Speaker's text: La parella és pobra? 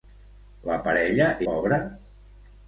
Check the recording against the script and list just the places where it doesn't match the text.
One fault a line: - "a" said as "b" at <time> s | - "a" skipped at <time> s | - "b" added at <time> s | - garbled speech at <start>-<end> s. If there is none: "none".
- "és" skipped at 1.3 s